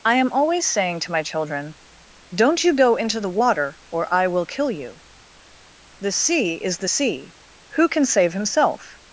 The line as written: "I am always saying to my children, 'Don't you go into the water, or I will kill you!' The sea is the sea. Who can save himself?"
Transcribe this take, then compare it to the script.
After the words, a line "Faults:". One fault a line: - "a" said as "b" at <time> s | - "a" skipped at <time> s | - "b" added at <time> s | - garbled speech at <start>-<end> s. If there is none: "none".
"I am always saying to my children, 'Don't you go into the water, or I will kill you!' The sea is the sea. Who can save himself?"
Faults:
none